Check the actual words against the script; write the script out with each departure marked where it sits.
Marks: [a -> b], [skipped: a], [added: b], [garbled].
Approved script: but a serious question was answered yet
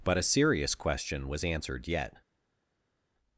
but a serious question was answered yet